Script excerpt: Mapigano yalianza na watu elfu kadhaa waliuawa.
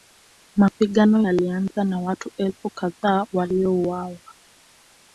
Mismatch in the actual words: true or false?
false